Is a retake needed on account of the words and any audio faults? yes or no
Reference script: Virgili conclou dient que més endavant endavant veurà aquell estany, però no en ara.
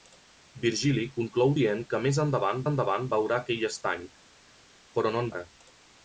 no